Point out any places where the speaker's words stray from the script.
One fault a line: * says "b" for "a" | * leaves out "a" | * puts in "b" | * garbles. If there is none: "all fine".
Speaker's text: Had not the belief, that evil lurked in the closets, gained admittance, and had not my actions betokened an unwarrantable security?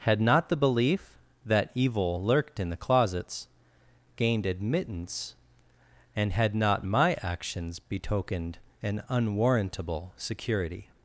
all fine